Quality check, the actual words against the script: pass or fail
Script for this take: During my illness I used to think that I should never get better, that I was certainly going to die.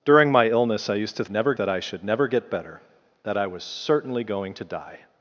fail